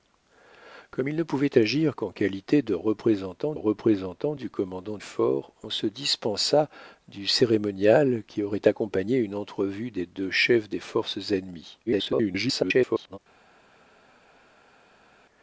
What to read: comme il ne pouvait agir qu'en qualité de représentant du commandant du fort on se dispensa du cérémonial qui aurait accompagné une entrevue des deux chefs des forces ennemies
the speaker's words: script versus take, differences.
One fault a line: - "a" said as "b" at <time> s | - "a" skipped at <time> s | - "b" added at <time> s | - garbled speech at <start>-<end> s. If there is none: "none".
- "représentant" added at 3.5 s
- "du" skipped at 5.0 s
- garbled speech at 11.9-13.2 s